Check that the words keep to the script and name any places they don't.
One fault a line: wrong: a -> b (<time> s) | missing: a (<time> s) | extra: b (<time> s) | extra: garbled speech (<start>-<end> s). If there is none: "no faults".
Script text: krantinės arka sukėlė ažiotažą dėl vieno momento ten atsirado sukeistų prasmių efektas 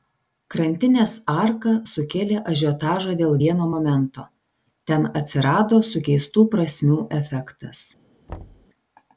no faults